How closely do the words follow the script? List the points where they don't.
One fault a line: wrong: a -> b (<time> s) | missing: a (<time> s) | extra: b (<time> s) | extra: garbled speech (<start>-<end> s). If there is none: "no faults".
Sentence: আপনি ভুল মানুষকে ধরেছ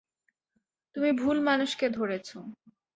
wrong: আপনি -> তুমি (0.9 s)